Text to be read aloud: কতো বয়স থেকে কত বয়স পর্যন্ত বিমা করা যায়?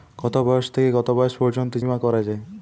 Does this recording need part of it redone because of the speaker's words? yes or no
no